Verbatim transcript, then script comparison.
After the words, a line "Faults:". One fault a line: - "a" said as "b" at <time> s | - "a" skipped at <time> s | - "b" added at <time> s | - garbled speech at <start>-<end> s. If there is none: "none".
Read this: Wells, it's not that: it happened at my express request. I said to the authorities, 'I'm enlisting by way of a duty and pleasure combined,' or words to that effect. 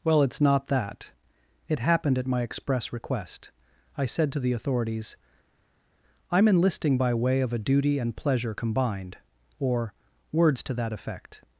Well, it's not that: it happened at my express request. I said to the authorities, 'I'm enlisting by way of a duty and pleasure combined,' or words to that effect.
Faults:
- "Wells" said as "Well" at 0.0 s